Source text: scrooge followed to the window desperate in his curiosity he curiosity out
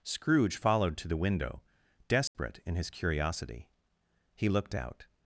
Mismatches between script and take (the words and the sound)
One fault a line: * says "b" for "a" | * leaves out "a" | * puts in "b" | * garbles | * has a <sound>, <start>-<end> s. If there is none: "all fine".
* has a dropout, 2.3-2.3 s
* says "looked" for "curiosity"